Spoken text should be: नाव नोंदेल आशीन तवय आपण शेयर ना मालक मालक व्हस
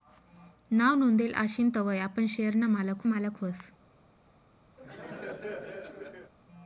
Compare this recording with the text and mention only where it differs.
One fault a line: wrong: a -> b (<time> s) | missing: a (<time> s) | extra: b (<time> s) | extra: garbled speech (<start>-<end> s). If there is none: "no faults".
no faults